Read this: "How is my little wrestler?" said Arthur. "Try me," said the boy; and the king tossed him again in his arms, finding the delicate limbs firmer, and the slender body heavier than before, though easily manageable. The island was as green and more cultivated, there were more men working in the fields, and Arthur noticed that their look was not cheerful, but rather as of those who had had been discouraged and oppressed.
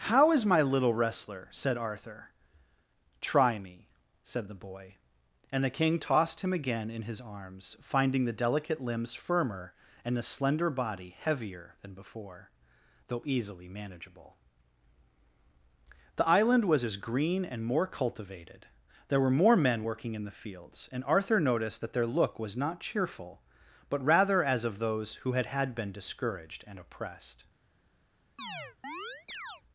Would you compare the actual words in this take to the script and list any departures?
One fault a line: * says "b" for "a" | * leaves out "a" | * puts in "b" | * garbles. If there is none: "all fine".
all fine